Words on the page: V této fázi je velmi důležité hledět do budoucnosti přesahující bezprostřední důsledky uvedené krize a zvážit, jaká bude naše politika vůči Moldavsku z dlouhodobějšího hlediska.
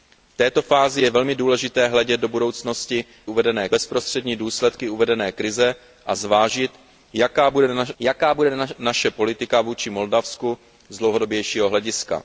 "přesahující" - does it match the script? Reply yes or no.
no